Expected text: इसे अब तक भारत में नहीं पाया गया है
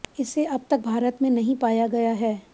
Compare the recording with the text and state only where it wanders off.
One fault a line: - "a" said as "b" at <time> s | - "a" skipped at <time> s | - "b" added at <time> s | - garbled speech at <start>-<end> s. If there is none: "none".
none